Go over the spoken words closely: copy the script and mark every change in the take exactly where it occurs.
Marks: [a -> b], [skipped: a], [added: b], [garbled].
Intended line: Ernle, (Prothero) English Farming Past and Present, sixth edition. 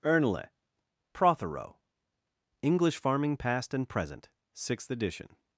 Ernle, (Prothero) English Farming Past and Present, sixth edition.